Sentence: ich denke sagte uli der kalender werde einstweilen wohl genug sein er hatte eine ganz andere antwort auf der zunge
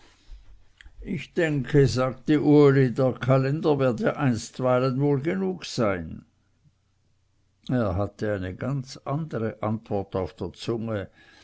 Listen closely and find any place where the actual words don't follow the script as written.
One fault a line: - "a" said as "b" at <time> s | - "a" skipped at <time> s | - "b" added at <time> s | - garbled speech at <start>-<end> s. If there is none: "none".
none